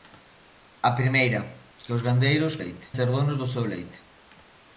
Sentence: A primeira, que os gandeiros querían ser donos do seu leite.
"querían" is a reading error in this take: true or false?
true